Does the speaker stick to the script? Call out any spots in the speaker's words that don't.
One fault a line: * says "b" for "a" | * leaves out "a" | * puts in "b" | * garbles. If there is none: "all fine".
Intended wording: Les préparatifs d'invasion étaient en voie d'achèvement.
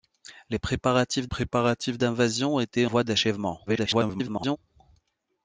* puts in "préparatifs"
* leaves out "en"
* garbles